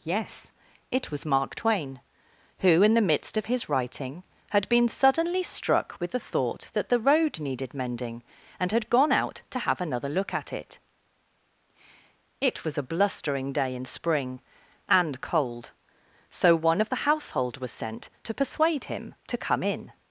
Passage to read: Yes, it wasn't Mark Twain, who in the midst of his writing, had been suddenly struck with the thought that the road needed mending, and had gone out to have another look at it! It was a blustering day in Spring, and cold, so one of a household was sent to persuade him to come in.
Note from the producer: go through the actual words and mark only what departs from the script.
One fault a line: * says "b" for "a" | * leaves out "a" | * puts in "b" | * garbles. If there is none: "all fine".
* says "was" for "wasn't"
* says "the" for "a"